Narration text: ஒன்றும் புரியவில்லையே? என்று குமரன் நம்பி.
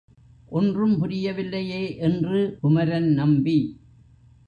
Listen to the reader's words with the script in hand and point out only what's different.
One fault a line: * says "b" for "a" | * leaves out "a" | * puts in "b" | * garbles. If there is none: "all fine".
all fine